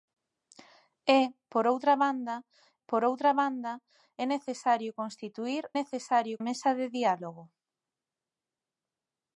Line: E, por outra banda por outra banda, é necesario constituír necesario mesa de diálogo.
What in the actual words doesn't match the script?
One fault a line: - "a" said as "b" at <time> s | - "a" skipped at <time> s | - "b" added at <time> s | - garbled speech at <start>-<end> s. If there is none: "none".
none